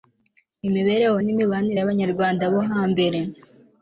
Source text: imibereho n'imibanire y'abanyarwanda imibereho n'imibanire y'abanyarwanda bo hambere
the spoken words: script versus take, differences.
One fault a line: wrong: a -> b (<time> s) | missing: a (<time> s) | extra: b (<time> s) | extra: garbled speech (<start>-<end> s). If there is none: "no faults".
missing: imibereho n'imibanire y'abanyarwanda (2.4 s)